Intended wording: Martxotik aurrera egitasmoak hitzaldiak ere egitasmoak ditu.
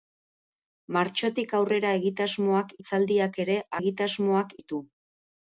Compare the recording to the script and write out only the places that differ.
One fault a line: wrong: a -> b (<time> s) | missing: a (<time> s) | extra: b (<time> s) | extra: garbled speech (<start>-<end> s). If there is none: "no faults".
no faults